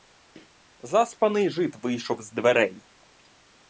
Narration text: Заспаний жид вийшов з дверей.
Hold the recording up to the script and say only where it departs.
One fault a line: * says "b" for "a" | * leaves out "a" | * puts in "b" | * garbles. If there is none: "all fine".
all fine